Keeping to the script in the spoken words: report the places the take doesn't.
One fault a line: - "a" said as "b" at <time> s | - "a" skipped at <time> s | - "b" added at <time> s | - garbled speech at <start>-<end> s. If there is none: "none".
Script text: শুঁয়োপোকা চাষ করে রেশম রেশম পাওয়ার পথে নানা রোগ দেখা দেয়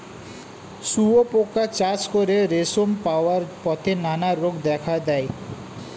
- "রেশম" skipped at 2.9 s